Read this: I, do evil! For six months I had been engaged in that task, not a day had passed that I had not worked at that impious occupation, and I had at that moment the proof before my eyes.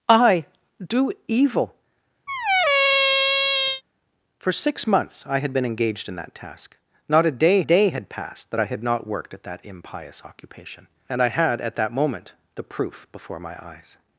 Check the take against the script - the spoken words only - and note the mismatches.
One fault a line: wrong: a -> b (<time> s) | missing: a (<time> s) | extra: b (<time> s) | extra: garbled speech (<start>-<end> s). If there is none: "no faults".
extra: day (7.6 s)